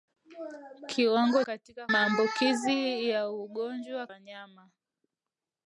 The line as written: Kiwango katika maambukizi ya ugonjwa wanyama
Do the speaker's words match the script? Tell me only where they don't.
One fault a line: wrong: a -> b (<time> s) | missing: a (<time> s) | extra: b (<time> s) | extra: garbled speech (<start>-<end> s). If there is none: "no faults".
no faults